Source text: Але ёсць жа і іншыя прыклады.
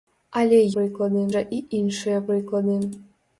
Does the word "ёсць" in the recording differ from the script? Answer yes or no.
yes